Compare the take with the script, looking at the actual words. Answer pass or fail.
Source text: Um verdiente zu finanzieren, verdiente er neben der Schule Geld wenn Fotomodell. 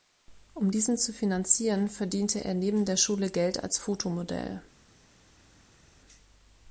fail